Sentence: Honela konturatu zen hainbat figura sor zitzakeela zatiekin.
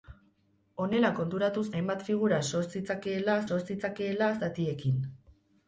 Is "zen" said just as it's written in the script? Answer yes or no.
no